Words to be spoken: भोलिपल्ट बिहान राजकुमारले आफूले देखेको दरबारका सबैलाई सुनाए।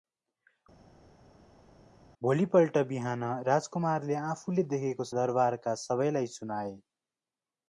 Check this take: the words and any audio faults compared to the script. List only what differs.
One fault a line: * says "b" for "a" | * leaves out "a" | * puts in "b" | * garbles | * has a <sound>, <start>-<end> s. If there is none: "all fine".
all fine